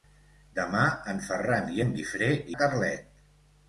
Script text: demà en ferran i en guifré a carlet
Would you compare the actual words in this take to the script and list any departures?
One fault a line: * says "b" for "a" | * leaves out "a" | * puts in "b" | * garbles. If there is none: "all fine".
all fine